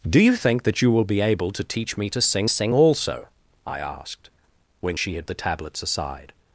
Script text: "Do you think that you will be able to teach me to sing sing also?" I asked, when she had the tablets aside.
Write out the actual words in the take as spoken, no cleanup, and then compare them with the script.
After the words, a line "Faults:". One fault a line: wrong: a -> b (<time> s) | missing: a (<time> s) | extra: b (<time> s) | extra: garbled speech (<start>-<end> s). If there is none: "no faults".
"Do you think that you will be able to teach me to sing sing also?" I asked, when she had the tablets aside.
Faults:
no faults